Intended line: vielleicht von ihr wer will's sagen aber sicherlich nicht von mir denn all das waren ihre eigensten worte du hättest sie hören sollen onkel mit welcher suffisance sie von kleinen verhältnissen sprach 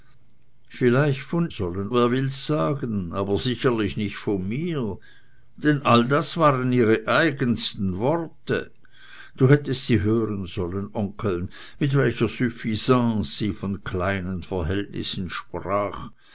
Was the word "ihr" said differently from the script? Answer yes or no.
yes